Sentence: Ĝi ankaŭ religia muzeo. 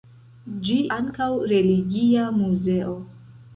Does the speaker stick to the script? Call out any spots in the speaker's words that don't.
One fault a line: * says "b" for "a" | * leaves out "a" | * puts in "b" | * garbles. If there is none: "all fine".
all fine